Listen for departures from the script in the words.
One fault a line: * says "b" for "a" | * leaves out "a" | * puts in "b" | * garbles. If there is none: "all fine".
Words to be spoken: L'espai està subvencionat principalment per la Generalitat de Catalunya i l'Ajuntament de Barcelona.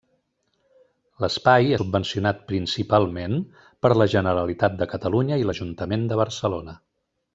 * leaves out "està"